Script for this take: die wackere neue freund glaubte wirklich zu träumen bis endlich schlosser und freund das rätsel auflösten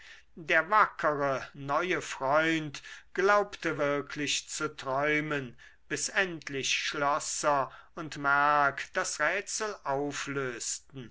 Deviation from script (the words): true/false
true